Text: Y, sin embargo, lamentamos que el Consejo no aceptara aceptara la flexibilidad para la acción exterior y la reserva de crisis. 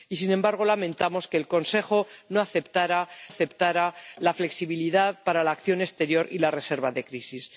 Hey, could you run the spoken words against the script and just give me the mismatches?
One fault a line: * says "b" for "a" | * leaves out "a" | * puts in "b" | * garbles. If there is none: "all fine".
all fine